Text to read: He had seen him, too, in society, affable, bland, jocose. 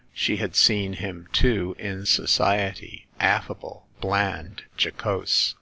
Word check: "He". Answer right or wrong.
wrong